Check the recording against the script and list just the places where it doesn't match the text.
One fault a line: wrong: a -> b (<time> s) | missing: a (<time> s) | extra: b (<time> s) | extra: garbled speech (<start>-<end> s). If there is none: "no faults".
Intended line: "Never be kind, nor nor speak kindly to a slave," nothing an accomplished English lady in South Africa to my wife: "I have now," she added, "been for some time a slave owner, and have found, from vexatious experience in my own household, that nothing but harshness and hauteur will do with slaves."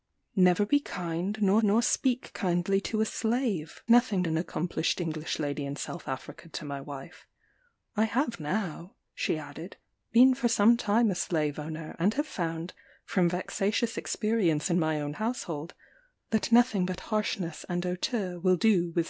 no faults